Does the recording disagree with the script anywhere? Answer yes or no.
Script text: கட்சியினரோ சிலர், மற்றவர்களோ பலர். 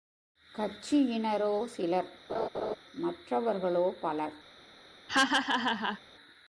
no